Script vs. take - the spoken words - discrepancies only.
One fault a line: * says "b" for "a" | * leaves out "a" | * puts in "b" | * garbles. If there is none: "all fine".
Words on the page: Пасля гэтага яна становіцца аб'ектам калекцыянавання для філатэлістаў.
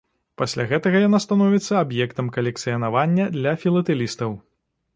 all fine